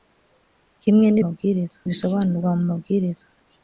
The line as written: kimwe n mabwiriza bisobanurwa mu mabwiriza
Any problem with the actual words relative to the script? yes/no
no